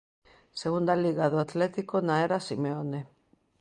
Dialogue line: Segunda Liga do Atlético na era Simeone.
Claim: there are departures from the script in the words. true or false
false